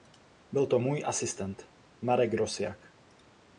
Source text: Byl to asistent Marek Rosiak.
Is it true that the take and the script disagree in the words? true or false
true